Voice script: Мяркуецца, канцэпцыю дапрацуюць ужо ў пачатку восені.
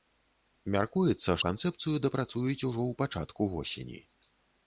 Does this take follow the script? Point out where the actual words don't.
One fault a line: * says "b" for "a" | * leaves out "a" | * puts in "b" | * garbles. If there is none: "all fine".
all fine